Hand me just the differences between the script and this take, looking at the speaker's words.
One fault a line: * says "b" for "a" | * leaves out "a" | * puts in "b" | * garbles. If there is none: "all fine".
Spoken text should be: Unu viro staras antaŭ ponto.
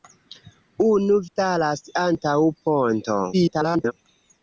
* leaves out "viro"
* garbles